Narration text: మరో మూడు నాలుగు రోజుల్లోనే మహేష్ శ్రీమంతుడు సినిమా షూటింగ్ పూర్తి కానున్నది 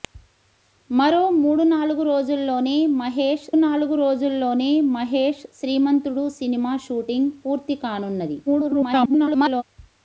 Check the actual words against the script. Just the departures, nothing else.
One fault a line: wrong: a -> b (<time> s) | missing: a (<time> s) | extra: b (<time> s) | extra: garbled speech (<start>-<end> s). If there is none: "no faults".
extra: నాలుగు రోజుల్లోనే మహేష్ (3.6 s)
extra: garbled speech (8.5-9.6 s)